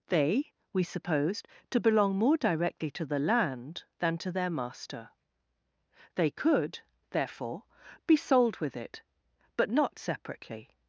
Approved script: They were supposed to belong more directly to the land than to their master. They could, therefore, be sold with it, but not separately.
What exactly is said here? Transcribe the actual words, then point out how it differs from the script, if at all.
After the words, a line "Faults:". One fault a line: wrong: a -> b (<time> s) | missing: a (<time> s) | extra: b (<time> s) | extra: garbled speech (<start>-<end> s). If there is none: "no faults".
They we supposed to belong more directly to the land than to their master. They could, therefore, be sold with it, but not separately.
Faults:
wrong: were -> we (0.7 s)